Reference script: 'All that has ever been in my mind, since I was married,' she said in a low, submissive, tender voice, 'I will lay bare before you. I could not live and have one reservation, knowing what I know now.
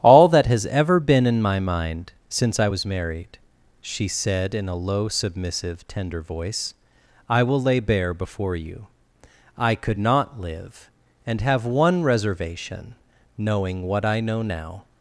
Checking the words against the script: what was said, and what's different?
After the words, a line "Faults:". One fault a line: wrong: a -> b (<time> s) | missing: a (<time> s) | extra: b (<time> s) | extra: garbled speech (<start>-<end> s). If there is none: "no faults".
'All that has ever been in my mind, since I was married,' she said in a low, submissive, tender voice, 'I will lay bare before you. I could not live and have one reservation, knowing what I know now.
Faults:
no faults